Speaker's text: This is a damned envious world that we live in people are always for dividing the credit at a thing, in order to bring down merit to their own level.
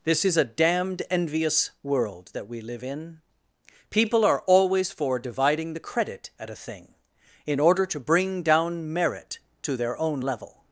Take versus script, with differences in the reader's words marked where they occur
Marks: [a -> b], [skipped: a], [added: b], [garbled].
This is a damned envious world that we live in people are always for dividing the credit at a thing, in order to bring down merit to their own level.